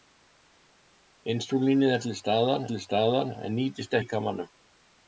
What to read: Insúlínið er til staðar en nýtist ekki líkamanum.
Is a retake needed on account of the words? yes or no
yes